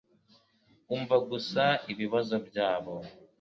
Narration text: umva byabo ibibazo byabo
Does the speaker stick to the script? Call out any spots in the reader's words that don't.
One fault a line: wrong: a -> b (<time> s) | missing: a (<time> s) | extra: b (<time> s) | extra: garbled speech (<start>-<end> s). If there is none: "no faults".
wrong: byabo -> gusa (1.3 s)